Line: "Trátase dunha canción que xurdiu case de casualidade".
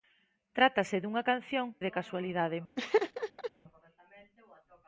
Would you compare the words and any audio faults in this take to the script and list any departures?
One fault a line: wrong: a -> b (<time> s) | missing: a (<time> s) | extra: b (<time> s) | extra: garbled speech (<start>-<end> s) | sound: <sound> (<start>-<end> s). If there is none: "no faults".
missing: que xurdiu case (1.7 s)
sound: laugh (2.8-3.5 s)